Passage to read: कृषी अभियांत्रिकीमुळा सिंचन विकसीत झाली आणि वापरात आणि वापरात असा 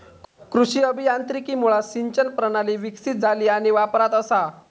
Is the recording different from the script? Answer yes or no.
yes